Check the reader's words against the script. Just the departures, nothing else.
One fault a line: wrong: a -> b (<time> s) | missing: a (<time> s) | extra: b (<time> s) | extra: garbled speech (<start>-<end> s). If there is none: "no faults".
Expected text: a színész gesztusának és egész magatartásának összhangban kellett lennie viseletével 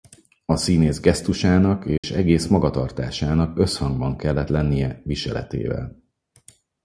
no faults